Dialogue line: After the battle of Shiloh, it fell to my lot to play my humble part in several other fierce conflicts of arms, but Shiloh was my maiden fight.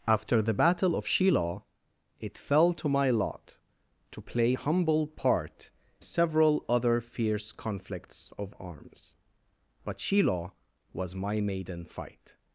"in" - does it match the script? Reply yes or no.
no